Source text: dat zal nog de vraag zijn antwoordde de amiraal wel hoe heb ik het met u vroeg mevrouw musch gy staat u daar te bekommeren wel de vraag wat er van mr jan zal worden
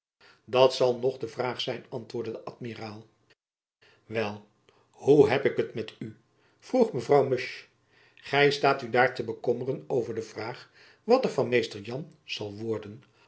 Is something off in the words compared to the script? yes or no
yes